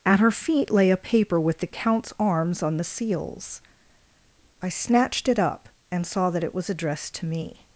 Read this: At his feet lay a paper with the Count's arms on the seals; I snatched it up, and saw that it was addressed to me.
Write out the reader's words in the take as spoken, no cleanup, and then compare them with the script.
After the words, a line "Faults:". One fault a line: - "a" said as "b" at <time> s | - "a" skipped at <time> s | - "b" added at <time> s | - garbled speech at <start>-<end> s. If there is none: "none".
At her feet lay a paper with the Count's arms on the seals; I snatched it up, and saw that it was addressed to me.
Faults:
- "his" said as "her" at 0.2 s